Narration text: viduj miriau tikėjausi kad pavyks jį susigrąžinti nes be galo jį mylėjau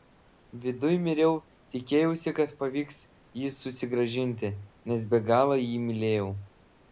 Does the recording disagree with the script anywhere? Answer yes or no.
no